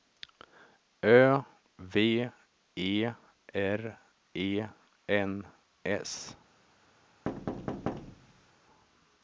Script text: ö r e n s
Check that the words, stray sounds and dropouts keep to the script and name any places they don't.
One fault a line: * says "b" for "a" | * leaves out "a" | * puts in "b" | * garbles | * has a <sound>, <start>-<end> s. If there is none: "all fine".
* puts in "v e"
* has a thud, 7.3-8.5 s